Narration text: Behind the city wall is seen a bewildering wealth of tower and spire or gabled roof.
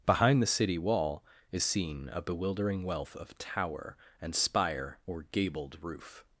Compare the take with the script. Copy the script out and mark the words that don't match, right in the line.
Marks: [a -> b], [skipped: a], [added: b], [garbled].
Behind the city wall is seen a bewildering wealth of tower and spire or gabled roof.